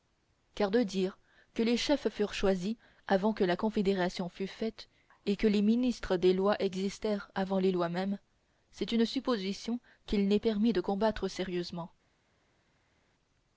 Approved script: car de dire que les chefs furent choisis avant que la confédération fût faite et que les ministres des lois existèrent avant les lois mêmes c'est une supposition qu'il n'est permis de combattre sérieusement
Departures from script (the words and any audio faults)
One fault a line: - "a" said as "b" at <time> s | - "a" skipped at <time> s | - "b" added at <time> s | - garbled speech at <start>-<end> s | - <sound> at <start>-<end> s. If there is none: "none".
none